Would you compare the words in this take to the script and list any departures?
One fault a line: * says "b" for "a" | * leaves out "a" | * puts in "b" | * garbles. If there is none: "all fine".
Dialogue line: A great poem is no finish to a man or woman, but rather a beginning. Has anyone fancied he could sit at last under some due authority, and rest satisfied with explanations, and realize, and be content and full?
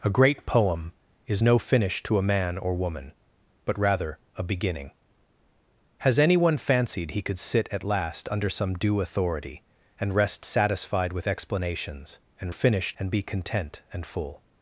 * says "finish" for "realize"